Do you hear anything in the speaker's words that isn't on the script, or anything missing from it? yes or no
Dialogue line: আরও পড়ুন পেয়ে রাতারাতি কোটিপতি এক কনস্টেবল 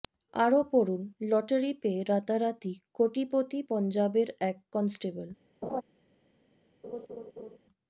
yes